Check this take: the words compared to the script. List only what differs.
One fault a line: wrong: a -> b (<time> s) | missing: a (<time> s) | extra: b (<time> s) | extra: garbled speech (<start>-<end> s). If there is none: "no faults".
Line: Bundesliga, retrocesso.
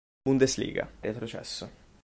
no faults